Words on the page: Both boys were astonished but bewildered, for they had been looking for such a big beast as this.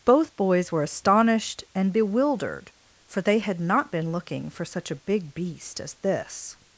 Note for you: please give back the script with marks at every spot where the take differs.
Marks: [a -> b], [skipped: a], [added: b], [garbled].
Both boys were astonished [but -> and] bewildered, for they had [added: not] been looking for such a big beast as this.